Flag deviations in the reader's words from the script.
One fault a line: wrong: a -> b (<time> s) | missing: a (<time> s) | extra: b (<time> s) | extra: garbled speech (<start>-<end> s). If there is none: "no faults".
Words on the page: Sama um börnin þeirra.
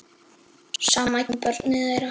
no faults